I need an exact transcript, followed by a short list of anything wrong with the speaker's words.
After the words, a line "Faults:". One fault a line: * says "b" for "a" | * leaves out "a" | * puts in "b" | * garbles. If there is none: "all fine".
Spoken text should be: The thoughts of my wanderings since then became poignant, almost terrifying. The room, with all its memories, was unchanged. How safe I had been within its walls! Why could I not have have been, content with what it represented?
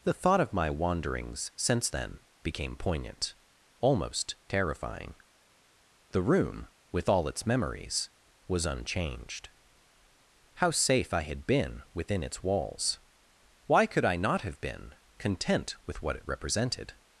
The thought of my wanderings since then became poignant, almost terrifying. The room, with all its memories, was unchanged. How safe I had been within its walls! Why could I not have been, content with what it represented?
Faults:
* says "thought" for "thoughts"
* leaves out "have"